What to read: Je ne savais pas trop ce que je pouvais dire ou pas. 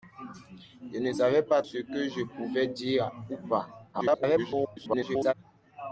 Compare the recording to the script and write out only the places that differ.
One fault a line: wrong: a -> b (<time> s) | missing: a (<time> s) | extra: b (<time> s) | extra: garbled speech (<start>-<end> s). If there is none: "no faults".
missing: trop (1.6 s)
extra: garbled speech (3.9-5.3 s)